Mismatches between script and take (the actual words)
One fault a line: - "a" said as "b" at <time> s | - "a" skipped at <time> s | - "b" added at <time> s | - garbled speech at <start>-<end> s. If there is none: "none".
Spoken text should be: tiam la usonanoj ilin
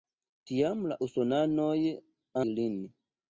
none